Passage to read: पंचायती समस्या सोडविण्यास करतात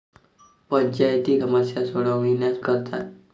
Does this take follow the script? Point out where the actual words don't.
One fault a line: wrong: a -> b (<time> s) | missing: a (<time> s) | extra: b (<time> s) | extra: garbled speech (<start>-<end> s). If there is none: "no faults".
no faults